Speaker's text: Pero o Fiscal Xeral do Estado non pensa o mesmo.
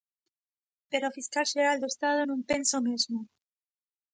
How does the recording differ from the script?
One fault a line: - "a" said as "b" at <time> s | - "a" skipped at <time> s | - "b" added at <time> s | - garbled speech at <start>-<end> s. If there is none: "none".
none